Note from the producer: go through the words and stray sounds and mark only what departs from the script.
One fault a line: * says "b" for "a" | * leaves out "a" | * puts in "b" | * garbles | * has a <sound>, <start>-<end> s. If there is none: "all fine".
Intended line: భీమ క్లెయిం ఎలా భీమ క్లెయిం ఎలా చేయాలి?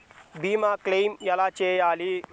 * leaves out "భీమ క్లెయిం ఎలా"